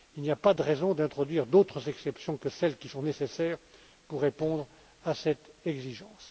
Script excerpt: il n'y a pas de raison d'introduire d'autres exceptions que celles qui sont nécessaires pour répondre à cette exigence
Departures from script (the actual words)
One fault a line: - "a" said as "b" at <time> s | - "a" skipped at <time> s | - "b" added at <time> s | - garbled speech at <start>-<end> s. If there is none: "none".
none